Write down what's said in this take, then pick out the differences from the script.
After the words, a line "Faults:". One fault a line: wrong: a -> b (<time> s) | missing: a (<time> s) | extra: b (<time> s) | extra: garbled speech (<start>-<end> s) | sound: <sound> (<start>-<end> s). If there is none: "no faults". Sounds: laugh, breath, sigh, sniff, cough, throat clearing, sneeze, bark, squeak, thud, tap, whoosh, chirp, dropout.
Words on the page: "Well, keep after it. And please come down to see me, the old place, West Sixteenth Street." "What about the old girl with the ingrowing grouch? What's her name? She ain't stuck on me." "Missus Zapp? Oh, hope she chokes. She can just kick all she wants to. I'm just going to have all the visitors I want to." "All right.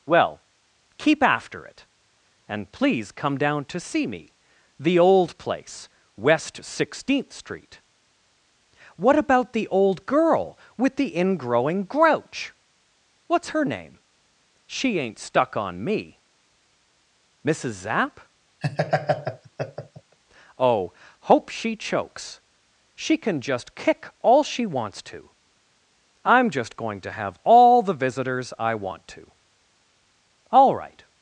"Well, keep after it. And please come down to see me, the old place, West Sixteenth Street." "What about the old girl with the ingrowing grouch? What's her name? She ain't stuck on me." "Missus Zapp? Oh, hope she chokes. She can just kick all she wants to. I'm just going to have all the visitors I want to." "All right.
Faults:
sound: laugh (18.6-20.2 s)